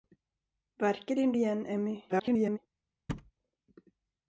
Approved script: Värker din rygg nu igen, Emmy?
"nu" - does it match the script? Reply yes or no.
no